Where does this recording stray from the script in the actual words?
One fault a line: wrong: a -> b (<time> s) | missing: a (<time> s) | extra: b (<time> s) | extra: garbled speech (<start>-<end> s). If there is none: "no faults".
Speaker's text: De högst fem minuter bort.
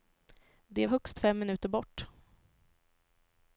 no faults